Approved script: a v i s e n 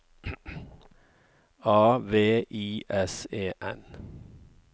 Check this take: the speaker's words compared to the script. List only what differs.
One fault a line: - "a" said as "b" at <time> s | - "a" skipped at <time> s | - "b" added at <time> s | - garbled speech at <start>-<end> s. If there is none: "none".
none